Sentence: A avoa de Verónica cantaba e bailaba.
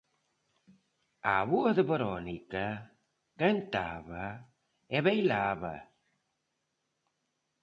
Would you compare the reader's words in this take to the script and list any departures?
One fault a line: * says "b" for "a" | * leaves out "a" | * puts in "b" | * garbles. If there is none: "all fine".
all fine